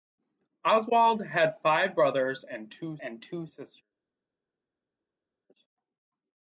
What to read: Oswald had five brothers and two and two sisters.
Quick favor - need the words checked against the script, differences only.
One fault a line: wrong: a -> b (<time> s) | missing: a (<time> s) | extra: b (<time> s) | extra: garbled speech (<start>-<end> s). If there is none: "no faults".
no faults